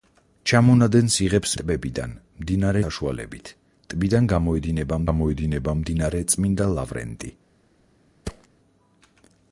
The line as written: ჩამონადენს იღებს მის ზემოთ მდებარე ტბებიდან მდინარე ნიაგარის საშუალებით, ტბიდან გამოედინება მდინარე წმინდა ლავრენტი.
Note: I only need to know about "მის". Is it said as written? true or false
false